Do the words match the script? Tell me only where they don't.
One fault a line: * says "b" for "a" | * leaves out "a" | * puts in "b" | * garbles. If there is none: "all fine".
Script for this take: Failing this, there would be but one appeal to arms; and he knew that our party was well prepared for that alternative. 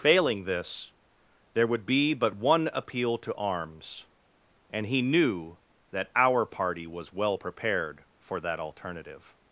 all fine